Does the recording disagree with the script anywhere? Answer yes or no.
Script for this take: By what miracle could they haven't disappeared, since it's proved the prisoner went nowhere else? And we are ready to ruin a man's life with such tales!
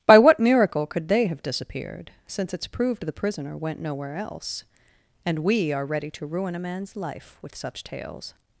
yes